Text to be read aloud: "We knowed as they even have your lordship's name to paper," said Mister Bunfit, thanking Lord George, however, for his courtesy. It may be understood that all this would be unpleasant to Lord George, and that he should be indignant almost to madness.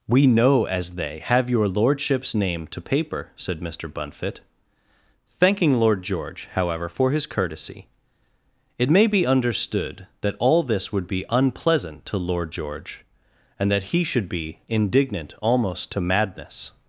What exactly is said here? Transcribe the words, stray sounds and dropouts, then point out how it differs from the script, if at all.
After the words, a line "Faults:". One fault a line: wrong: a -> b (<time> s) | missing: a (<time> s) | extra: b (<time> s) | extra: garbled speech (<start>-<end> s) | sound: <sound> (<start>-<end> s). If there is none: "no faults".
"We know as they have your lordship's name to paper," said Mister Bunfit, thanking Lord George, however, for his courtesy. It may be understood that all this would be unpleasant to Lord George, and that he should be indignant almost to madness.
Faults:
wrong: knowed -> know (0.3 s)
missing: even (1.2 s)